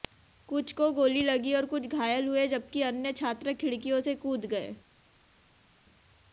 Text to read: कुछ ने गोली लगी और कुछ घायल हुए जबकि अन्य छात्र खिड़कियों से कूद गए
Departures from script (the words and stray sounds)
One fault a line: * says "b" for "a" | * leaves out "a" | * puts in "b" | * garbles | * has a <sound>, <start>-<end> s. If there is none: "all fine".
* says "को" for "ने"